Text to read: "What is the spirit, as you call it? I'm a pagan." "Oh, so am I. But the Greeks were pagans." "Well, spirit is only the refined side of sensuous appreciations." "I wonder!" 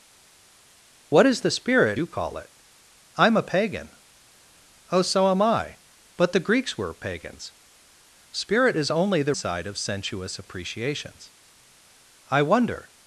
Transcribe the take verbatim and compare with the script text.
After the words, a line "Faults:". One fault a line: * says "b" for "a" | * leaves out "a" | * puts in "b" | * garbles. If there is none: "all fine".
"What is the spirit, you call it? I'm a pagan." "Oh, so am I. But the Greeks were pagans." "Spirit is only the side of sensuous appreciations." "I wonder!"
Faults:
* leaves out "as"
* leaves out "Well"
* leaves out "refined"